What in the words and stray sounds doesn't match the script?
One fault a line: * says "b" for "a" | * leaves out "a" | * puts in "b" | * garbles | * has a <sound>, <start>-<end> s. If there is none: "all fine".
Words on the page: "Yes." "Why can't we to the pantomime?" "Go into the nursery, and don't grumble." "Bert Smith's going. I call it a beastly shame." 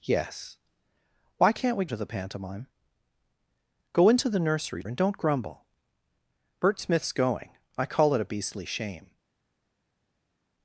all fine